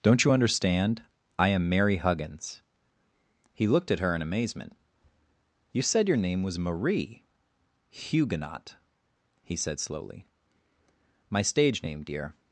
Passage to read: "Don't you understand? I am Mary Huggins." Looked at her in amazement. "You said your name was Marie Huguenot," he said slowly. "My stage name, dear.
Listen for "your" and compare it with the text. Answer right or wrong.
right